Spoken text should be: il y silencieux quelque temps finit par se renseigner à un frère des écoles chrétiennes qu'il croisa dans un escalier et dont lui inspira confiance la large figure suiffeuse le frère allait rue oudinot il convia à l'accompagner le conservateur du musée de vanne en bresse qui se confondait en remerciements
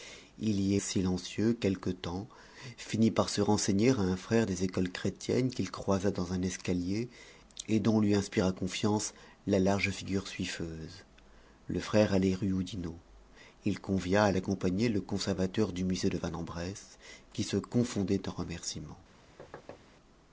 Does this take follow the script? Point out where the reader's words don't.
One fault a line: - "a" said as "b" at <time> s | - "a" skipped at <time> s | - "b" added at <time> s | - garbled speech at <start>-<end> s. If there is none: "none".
none